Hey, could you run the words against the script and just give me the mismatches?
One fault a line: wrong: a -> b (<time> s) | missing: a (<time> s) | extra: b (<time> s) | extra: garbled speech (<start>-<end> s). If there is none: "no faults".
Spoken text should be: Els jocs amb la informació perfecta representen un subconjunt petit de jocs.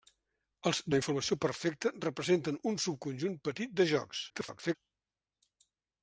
missing: jocs amb (0.8 s)
extra: garbled speech (4.3-4.8 s)